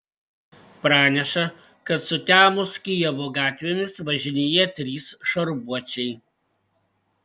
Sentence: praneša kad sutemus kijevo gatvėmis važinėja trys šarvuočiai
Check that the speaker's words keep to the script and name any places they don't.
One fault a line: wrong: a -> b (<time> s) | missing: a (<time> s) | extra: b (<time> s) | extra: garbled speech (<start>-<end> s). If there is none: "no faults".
no faults